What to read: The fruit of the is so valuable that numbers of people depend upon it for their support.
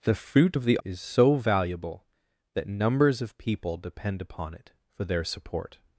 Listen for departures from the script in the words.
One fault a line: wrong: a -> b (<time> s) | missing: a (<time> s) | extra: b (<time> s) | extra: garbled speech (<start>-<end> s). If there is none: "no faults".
no faults